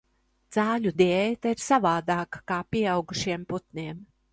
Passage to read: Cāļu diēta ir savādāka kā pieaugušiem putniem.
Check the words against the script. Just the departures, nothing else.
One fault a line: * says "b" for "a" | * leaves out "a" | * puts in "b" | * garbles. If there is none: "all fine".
all fine